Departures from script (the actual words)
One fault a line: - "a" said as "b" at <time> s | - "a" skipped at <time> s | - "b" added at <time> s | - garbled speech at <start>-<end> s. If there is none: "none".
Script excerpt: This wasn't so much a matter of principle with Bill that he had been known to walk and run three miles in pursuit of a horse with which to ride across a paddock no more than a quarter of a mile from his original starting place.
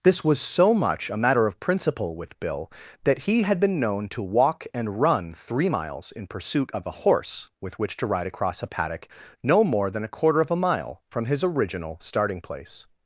- "wasn't" said as "was" at 0.2 s